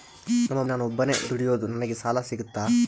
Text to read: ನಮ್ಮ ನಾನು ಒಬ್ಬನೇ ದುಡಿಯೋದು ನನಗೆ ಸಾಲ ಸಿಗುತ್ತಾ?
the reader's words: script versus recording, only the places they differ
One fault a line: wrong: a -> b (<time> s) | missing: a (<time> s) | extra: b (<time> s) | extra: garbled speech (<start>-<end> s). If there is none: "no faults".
no faults